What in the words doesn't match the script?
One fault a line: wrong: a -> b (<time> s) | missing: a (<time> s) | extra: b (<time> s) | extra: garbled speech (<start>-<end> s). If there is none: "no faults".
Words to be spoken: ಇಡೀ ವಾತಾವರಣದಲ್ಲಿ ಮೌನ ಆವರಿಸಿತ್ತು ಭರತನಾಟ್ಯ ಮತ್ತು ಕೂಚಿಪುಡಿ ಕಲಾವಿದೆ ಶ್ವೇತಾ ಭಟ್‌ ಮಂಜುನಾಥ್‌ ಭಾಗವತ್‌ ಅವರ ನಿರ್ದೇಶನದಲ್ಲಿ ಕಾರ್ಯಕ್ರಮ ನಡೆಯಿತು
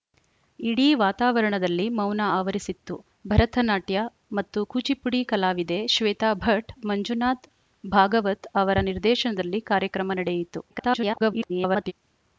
extra: garbled speech (10.7-11.9 s)